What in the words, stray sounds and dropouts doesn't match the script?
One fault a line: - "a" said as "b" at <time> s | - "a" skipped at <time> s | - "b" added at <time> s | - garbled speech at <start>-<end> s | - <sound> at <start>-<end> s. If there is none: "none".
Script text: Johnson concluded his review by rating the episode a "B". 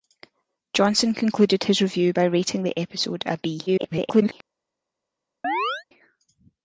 - garbled speech at 3.7-4.3 s
- chirp at 5.4-5.8 s